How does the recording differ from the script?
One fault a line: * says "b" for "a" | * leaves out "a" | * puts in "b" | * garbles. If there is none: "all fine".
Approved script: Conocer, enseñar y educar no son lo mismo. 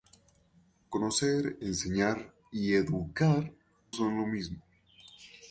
* leaves out "no"